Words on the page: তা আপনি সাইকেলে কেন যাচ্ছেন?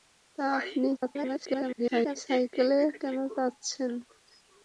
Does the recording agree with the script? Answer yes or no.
no